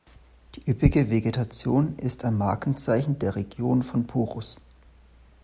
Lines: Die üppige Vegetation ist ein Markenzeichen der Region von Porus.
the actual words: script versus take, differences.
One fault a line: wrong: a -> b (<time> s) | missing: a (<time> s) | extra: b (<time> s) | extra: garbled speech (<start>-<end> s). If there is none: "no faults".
no faults